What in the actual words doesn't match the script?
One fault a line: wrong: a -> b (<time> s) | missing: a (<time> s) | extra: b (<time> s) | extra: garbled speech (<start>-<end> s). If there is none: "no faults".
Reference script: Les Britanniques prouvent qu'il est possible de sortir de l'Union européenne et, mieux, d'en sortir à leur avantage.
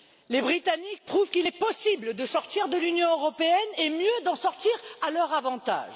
no faults